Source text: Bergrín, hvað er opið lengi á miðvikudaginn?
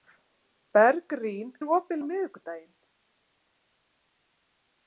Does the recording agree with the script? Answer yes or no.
no